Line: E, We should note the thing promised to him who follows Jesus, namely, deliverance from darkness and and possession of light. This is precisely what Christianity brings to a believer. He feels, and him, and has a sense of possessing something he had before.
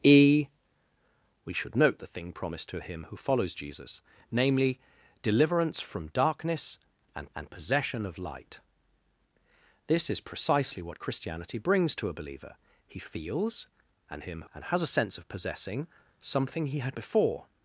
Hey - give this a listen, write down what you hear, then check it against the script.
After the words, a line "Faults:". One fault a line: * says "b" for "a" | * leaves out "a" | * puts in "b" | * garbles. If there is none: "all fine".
E, We should note the thing promised to him who follows Jesus, namely, deliverance from darkness and and possession of light. This is precisely what Christianity brings to a believer. He feels, and him, and has a sense of possessing something he had before.
Faults:
all fine